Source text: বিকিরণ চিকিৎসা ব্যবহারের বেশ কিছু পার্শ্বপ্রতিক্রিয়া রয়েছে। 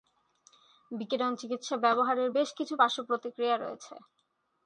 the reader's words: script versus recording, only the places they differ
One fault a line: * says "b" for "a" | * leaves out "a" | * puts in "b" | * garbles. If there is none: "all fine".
all fine